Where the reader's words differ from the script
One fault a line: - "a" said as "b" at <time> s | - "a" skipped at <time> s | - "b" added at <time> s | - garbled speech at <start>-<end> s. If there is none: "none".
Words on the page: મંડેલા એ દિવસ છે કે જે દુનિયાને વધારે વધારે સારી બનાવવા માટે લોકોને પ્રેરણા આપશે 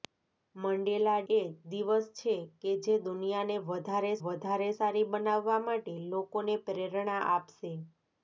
none